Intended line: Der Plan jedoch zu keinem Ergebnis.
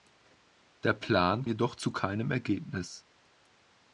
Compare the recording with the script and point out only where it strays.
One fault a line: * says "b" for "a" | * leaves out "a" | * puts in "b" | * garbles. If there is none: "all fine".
all fine